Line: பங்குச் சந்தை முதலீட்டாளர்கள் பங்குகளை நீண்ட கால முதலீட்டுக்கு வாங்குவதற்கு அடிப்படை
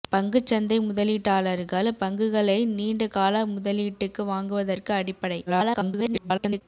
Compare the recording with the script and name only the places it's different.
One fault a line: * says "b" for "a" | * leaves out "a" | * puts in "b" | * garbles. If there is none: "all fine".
* garbles